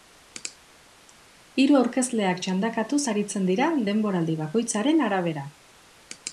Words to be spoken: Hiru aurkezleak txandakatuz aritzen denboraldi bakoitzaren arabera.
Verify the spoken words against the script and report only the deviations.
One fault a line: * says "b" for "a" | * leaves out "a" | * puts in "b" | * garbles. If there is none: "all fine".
* puts in "dira"